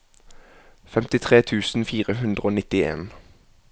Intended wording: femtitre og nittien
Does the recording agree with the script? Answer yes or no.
no